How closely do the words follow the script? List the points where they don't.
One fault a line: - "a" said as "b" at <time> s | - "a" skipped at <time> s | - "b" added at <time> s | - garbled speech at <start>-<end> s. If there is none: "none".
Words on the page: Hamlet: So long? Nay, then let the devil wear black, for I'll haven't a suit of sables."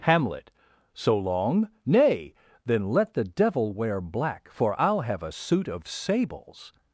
- "haven't" said as "have" at 5.0 s